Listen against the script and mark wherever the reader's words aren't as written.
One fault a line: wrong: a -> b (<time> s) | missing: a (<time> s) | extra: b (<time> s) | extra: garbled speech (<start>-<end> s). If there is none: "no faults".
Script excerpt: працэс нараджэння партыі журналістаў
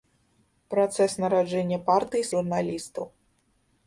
no faults